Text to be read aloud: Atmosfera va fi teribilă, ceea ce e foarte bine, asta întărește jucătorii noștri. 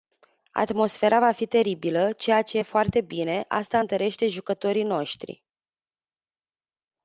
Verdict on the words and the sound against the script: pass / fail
pass